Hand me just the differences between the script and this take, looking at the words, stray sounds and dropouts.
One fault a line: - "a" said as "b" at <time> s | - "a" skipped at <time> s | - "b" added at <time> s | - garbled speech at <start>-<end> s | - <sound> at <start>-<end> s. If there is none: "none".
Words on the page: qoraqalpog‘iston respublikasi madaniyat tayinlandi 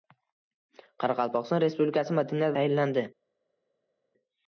none